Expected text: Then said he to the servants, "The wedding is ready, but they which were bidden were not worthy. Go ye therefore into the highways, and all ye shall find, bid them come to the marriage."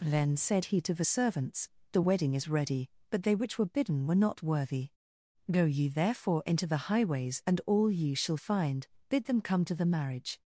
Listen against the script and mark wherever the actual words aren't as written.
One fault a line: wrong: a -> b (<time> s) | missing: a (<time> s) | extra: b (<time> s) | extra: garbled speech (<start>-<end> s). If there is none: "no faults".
no faults